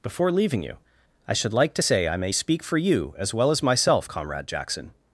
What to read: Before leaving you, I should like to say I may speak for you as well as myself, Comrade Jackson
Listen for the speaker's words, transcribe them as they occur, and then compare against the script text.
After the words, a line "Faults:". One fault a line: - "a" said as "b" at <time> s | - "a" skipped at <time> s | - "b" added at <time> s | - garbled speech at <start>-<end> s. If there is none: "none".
Before leaving you, I should like to say I may speak for you as well as myself, Comrade Jackson
Faults:
none